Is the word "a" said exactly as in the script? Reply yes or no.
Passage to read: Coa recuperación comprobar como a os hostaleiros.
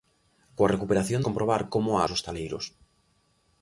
yes